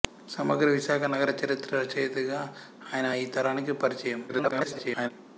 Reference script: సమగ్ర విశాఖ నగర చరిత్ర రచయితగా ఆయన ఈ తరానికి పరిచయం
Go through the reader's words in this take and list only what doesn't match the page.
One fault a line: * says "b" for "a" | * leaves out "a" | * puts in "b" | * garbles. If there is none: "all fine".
* garbles